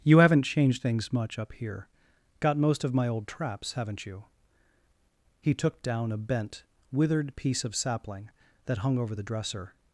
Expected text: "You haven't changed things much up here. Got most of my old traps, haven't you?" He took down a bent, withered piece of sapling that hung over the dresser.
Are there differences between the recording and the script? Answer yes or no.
no